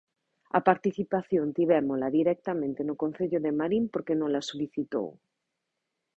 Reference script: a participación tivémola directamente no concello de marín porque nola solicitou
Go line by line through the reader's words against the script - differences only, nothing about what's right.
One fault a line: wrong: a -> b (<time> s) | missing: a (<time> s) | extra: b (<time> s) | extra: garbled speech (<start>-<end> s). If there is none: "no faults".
no faults